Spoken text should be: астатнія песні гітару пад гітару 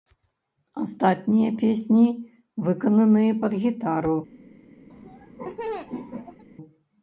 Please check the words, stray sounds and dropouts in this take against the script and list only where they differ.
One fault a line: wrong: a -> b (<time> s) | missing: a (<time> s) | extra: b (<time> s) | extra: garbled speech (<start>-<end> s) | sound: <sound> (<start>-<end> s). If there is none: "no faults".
wrong: гітару -> выкананыя (2.7 s)
sound: laugh (4.9-6.4 s)